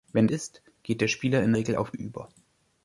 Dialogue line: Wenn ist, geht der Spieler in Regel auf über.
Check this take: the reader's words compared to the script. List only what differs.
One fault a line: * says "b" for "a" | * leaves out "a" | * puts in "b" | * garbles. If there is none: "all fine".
all fine